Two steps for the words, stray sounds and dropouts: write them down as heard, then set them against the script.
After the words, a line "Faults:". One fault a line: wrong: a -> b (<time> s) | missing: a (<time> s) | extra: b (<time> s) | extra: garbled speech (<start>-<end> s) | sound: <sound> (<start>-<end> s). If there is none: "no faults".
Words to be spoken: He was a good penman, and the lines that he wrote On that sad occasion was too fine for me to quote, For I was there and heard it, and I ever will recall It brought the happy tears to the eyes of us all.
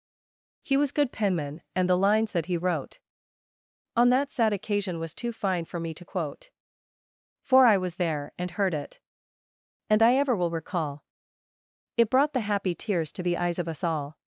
He was good penman, and the lines that he wrote On that sad occasion was too fine for me to quote, For I was there and heard it, and I ever will recall It brought the happy tears to the eyes of us all.
Faults:
missing: a (0.9 s)